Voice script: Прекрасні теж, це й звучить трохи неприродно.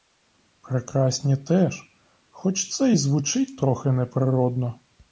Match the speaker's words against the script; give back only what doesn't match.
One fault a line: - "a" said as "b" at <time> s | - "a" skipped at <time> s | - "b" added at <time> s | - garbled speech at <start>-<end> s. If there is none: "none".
- "хоч" added at 2.3 s